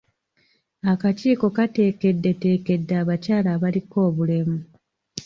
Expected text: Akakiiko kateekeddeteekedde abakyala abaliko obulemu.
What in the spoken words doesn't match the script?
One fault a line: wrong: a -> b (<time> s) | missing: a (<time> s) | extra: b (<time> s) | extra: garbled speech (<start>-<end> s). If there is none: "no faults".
no faults